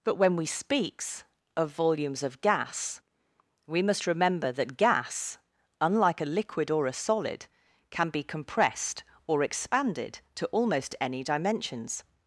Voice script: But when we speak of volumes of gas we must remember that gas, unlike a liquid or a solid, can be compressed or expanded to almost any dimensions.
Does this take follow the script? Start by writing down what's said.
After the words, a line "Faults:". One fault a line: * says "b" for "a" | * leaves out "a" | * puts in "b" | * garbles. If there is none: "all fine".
But when we speaks of volumes of gas we must remember that gas, unlike a liquid or a solid, can be compressed or expanded to almost any dimensions.
Faults:
* says "speaks" for "speak"